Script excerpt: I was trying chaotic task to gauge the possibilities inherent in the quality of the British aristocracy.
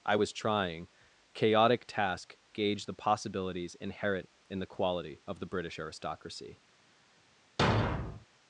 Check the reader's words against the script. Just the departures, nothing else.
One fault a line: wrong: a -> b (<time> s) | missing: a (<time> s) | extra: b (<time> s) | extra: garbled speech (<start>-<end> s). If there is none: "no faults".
missing: to (2.4 s)